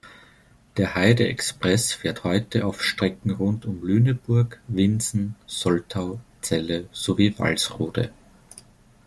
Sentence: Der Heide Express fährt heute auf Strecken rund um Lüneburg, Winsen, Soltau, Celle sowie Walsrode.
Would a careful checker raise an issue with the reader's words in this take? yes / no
no